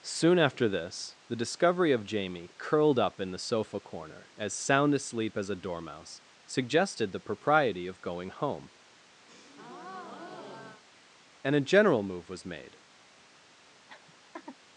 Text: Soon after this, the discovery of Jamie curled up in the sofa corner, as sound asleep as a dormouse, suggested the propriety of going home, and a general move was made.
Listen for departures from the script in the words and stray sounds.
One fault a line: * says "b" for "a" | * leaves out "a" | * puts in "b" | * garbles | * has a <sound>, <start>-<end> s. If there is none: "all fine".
* has a breath, 9.3-10.8 s
* has a laugh, 13.9-14.6 s